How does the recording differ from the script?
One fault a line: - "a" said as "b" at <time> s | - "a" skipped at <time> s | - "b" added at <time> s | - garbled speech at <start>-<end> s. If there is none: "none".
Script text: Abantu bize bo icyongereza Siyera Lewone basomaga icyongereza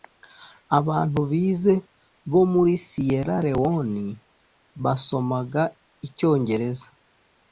- "icyongereza" said as "muri" at 2.5 s